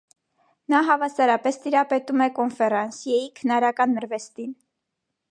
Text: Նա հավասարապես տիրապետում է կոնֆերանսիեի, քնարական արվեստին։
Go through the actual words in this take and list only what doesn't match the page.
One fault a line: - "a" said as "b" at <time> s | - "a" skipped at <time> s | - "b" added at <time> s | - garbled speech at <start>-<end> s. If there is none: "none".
none